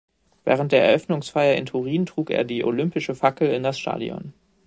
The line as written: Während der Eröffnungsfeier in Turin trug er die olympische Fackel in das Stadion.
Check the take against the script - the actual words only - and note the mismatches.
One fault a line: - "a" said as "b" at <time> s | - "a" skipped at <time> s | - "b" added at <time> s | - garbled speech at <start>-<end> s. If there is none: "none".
none